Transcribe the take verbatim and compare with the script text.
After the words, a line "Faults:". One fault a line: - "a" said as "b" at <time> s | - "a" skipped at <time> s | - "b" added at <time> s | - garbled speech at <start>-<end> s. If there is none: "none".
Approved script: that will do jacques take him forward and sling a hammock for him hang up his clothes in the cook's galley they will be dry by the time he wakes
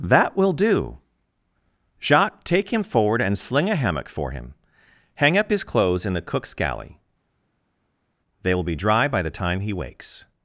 that will do jacques take him forward and sling a hammock for him hang up his clothes in the cook's galley they will be dry by the time he wakes
Faults:
none